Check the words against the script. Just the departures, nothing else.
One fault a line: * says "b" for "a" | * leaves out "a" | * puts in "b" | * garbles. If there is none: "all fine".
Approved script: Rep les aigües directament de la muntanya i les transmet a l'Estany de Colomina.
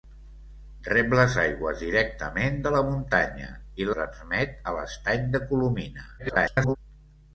* leaves out "les"
* garbles